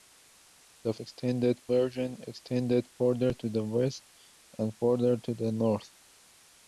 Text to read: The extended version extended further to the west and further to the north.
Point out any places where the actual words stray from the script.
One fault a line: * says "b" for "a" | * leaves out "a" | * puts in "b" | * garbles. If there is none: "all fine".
all fine